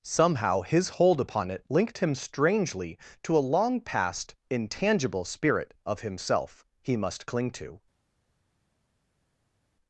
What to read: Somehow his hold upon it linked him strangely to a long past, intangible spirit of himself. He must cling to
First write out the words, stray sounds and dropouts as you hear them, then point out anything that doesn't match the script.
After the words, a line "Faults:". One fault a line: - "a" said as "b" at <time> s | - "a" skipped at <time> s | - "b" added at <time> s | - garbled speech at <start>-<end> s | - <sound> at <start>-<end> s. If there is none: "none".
Somehow his hold upon it linked him strangely to a long past, intangible spirit of himself. He must cling to
Faults:
none